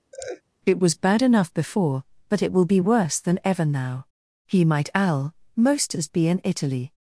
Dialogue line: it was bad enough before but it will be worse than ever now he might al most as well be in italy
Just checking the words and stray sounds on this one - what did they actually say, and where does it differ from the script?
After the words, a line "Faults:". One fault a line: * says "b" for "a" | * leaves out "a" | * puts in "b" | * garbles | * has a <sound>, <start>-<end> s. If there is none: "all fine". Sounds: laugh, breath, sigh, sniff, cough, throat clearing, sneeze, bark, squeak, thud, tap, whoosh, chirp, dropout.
it was bad enough before but it will be worse than ever now he might al most as be in italy
Faults:
* has a laugh, 0.1-0.4 s
* leaves out "well"